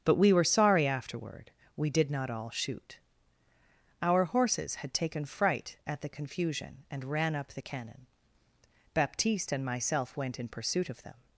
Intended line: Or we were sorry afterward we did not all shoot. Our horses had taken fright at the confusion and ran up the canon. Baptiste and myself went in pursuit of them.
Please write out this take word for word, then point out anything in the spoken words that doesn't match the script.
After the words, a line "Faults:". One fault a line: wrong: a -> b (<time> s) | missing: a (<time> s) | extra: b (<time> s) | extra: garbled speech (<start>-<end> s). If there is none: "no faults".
But we were sorry afterward we did not all shoot. Our horses had taken fright at the confusion and ran up the canon. Baptiste and myself went in pursuit of them.
Faults:
wrong: Or -> But (0.0 s)